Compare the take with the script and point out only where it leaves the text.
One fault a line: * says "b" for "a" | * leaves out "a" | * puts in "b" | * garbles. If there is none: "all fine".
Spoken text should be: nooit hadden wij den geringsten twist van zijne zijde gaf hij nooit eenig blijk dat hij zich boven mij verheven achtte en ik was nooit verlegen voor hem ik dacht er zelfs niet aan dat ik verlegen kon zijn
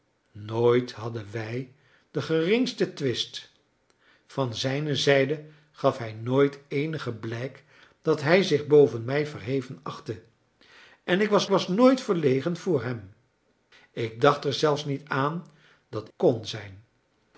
* puts in "was"
* leaves out "ik verlegen"